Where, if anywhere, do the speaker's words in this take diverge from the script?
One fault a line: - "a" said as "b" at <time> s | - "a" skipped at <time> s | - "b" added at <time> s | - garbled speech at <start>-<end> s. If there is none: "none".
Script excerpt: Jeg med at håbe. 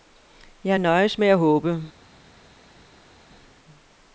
- "nøjes" added at 0.8 s